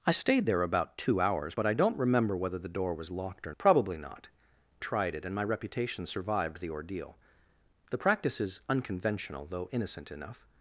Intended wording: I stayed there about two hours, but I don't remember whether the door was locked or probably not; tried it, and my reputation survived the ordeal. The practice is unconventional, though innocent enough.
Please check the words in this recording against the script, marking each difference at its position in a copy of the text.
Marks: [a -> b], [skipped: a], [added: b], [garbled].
I stayed there about two hours, but I don't remember whether the door was locked or probably not; tried it, and my reputation survived the ordeal. The practice is unconventional, though innocent enough.